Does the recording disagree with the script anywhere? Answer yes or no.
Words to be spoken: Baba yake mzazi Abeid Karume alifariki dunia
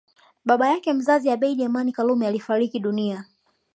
yes